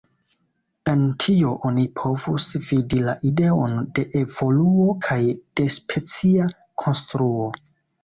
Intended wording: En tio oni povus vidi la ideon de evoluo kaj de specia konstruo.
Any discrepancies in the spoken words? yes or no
no